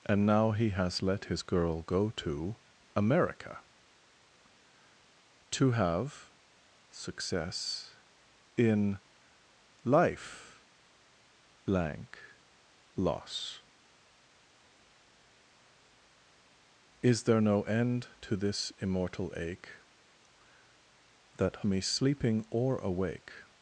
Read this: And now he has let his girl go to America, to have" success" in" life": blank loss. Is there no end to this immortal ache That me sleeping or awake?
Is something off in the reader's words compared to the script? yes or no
no